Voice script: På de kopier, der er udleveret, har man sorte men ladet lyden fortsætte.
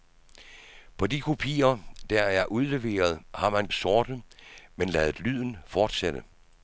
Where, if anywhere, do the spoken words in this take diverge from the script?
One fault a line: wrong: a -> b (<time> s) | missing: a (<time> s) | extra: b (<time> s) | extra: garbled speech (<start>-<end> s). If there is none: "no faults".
no faults